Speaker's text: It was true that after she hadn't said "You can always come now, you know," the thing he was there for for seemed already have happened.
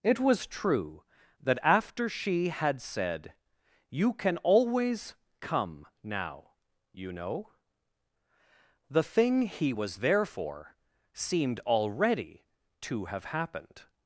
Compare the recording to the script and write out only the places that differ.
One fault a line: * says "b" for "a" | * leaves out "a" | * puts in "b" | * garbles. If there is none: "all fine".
* says "had" for "hadn't"
* leaves out "for"
* puts in "to"